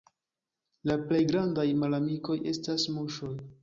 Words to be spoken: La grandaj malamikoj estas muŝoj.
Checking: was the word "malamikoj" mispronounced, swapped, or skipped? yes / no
no